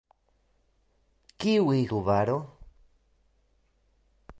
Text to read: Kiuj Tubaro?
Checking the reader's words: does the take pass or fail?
pass